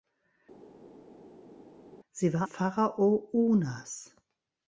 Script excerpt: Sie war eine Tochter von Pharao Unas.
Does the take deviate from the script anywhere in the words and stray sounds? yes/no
yes